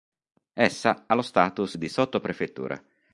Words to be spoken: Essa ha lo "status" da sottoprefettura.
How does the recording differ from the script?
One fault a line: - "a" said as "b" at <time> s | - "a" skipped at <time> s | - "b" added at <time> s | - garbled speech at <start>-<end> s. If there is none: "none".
- "da" said as "di" at 1.7 s